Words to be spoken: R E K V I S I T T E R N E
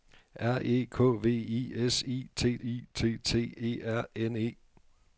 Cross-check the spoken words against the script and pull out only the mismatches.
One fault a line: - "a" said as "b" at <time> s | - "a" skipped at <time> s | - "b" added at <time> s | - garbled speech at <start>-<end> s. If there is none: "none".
- "I T" added at 2.6 s